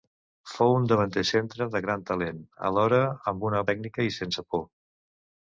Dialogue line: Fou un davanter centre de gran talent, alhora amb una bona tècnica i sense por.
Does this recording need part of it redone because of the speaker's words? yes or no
yes